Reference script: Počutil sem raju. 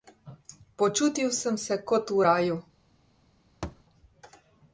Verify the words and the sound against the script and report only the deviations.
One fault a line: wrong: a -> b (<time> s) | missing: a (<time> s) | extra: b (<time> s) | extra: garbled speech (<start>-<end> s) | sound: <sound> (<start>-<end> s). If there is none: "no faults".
extra: se kot v (1.6 s)
sound: thud (3.6-3.8 s)